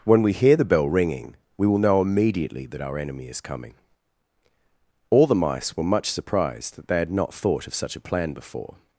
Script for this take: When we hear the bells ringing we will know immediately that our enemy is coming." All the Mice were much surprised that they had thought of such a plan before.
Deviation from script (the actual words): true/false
true